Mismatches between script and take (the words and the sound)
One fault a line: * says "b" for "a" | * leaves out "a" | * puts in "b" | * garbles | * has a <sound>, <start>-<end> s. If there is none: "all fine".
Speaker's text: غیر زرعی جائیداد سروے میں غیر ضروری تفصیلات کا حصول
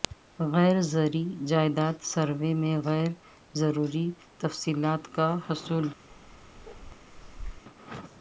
* has a bark, 6.1-7.6 s